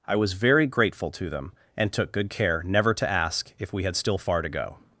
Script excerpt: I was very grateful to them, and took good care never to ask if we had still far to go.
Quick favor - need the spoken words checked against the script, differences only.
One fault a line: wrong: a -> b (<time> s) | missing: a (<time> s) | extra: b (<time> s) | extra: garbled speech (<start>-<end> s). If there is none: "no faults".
no faults